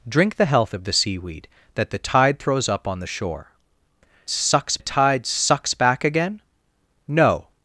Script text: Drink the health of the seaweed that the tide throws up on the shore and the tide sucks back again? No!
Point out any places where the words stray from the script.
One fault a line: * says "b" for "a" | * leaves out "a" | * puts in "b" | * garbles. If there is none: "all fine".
* says "sucks" for "and"